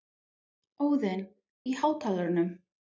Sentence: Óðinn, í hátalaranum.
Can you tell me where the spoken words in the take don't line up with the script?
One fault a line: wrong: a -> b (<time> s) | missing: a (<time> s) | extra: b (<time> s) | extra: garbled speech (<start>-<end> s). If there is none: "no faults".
no faults